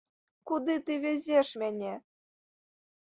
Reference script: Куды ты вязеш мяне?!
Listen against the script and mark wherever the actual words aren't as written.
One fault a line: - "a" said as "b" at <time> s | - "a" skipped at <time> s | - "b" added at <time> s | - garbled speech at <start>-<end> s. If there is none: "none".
none